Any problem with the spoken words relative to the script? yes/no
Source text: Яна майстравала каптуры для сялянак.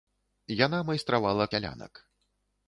yes